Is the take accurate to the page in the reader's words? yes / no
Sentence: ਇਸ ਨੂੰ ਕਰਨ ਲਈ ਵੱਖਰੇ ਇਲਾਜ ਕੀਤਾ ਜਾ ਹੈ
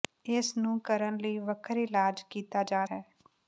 yes